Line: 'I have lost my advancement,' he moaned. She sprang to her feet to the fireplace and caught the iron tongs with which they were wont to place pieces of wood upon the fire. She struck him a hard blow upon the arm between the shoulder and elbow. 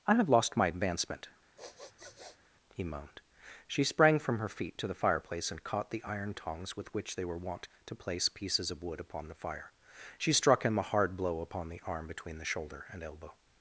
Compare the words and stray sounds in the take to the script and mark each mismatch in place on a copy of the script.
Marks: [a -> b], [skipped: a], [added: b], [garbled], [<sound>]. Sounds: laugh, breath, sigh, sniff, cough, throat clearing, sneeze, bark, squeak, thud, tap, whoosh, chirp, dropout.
'I have lost my advancement,' [sniff] he moaned. She sprang [to -> from] her feet to the fireplace and caught the iron tongs with which they were wont to place pieces of wood upon the fire. She struck him a hard blow upon the arm between the shoulder and elbow.